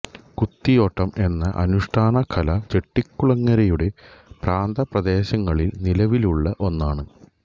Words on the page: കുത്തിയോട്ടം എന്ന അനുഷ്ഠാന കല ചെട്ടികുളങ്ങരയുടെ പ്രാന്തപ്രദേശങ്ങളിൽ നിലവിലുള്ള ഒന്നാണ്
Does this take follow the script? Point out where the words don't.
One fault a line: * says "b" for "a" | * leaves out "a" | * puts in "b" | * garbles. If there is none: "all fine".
all fine